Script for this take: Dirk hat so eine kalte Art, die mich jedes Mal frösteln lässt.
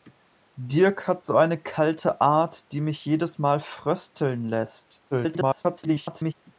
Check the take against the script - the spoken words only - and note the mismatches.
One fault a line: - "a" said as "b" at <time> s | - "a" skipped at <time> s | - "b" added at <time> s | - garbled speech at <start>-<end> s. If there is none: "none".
- garbled speech at 5.1-6.3 s